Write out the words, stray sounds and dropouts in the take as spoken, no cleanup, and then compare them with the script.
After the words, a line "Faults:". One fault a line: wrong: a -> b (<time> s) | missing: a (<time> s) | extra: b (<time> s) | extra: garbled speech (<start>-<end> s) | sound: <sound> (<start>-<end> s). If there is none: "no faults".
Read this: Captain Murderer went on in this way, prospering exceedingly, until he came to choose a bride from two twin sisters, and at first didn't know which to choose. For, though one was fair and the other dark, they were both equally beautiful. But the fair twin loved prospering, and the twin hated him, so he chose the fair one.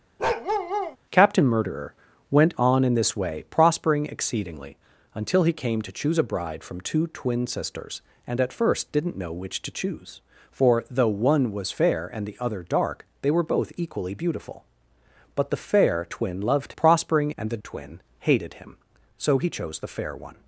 Captain Murderer went on in this way, prospering exceedingly, until he came to choose a bride from two twin sisters, and at first didn't know which to choose. For, though one was fair and the other dark, they were both equally beautiful. But the fair twin loved prospering, and the twin hated him, so he chose the fair one.
Faults:
sound: bark (0.2-1.0 s)